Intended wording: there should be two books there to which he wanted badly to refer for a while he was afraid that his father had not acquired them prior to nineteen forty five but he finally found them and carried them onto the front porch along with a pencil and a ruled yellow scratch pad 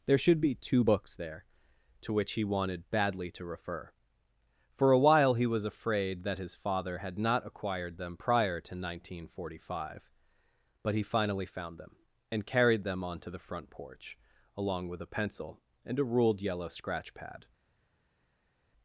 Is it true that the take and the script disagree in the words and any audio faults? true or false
false